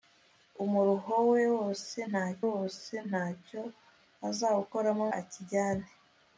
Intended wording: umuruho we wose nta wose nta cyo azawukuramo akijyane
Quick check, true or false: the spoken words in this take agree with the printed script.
true